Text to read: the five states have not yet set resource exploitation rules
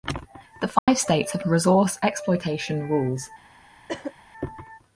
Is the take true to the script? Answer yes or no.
no